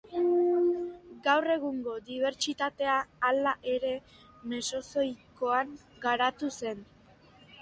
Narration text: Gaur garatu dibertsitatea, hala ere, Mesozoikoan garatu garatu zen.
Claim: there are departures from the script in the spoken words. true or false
true